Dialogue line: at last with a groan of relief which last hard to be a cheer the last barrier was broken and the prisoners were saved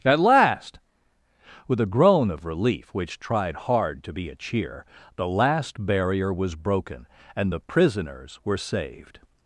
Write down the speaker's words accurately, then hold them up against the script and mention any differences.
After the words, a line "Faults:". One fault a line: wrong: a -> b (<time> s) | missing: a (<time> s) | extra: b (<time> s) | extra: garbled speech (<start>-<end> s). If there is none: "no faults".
at last with a groan of relief which tried hard to be a cheer the last barrier was broken and the prisoners were saved
Faults:
wrong: last -> tried (3.2 s)